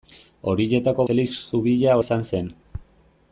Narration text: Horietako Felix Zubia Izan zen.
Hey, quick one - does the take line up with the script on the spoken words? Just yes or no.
yes